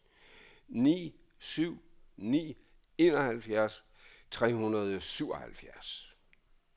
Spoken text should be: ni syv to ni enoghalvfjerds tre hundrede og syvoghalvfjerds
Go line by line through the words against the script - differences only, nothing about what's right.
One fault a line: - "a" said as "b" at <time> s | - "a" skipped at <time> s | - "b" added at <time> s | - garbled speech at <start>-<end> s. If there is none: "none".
- "to" skipped at 1.7 s